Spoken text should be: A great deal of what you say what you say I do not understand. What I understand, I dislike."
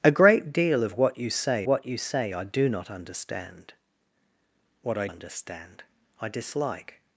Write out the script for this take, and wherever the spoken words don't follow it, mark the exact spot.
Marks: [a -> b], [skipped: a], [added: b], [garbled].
A great deal of what you say what you say I do not understand. What I understand, I dislike."